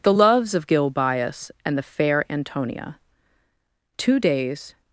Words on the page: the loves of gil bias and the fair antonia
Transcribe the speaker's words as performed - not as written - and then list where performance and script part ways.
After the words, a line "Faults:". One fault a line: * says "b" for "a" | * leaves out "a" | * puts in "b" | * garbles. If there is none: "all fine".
the loves of gil bias and the fair antonia two days
Faults:
* puts in "two days"